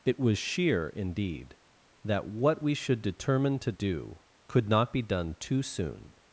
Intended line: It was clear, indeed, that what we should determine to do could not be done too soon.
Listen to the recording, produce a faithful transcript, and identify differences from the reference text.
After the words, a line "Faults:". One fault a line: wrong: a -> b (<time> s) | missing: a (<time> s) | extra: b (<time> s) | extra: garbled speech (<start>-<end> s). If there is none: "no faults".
It was sheer, indeed, that what we should determine to do could not be done too soon.
Faults:
wrong: clear -> sheer (0.4 s)